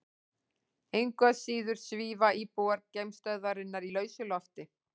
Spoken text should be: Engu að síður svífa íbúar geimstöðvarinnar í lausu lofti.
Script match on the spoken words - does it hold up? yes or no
yes